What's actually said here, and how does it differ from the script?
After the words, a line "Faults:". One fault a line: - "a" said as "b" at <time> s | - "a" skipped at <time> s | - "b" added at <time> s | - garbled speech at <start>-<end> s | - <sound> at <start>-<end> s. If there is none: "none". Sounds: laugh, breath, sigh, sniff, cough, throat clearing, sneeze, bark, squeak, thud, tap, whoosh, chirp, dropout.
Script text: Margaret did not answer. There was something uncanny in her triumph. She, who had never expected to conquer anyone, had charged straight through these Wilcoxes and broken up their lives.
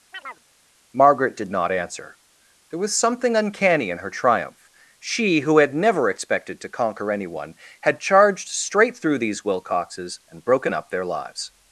Margaret did not answer. There was something uncanny in her triumph. She, who had never expected to conquer anyone, had charged straight through these Wilcoxes and broken up their lives.
Faults:
- chirp at 0.1-0.5 s